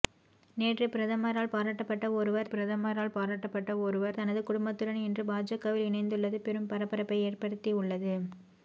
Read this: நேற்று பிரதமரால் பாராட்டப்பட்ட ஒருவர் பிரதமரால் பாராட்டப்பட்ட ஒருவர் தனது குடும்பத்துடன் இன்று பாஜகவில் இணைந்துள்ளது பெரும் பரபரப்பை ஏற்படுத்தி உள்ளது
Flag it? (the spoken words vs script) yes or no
no